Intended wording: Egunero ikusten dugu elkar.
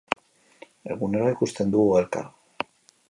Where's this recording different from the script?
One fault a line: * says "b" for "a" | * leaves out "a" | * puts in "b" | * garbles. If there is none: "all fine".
all fine